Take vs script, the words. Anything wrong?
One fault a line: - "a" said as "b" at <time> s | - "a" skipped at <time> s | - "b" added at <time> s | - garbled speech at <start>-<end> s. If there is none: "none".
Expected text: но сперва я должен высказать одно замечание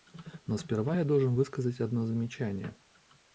none